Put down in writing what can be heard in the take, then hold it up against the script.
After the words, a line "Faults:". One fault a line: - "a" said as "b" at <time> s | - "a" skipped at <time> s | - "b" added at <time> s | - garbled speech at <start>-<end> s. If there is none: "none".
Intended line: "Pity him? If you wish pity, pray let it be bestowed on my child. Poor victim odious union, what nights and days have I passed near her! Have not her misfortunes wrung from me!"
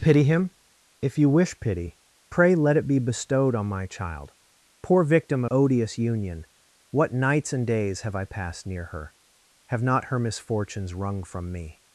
"Pity him? If you wish pity, pray let it be bestowed on my child. Poor victim odious union, what nights and days have I passed near her! Have not her misfortunes wrung from me!"
Faults:
none